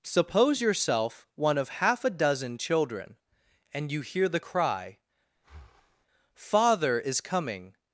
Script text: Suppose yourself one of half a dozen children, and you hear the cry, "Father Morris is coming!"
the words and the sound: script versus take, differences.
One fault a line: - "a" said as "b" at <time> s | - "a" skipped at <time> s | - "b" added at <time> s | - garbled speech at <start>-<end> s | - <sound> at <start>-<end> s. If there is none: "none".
- breath at 5.4-6.1 s
- "Morris" skipped at 7.0 s